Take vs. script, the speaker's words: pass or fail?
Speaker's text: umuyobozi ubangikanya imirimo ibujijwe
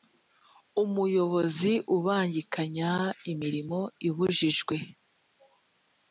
pass